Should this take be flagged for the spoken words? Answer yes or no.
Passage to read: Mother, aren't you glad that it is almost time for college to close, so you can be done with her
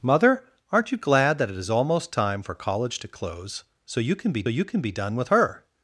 yes